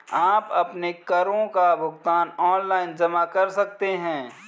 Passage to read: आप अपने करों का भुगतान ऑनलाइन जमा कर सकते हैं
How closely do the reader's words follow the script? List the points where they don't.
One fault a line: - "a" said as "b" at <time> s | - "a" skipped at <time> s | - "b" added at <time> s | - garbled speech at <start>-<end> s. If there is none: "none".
none